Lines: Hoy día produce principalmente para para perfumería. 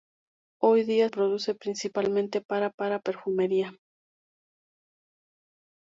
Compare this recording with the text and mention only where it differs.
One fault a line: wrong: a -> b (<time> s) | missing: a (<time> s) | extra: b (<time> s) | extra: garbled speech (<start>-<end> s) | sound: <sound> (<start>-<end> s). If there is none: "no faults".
no faults